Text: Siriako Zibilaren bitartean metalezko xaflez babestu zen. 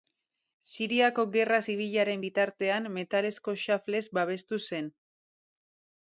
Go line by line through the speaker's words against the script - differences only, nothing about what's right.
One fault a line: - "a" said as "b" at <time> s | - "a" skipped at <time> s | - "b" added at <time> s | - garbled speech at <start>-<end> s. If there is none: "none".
- "Gerra" added at 1.3 s